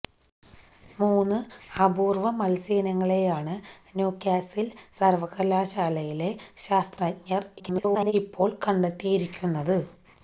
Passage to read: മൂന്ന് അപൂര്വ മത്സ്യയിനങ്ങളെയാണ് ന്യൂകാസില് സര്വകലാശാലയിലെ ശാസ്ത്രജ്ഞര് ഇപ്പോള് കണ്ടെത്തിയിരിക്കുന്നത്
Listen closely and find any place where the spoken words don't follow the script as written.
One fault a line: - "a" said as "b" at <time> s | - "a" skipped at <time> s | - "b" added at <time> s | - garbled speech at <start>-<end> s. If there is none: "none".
- garbled speech at 7.6-8.1 s